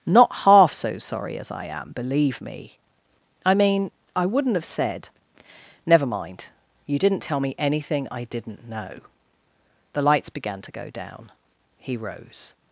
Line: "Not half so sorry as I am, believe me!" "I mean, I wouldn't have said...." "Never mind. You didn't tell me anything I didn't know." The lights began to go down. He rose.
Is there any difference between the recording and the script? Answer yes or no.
no